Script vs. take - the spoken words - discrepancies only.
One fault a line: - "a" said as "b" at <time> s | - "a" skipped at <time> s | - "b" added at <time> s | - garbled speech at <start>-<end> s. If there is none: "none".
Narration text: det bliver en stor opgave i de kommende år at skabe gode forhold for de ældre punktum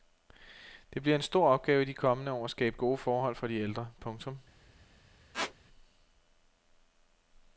none